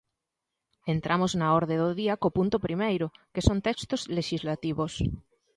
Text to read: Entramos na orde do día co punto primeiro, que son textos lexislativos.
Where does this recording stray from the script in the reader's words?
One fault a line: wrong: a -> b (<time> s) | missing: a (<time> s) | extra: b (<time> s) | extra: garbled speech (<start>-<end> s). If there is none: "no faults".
no faults